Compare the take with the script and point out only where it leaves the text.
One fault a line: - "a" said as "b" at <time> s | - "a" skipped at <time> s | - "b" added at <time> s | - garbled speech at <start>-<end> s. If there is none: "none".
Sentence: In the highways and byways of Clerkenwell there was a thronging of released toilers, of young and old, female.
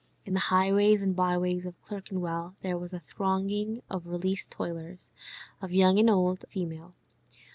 none